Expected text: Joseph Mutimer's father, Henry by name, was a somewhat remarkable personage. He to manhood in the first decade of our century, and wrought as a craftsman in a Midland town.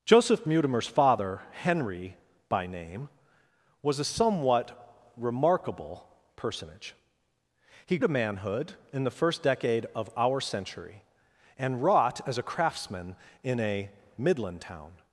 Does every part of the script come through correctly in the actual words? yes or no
yes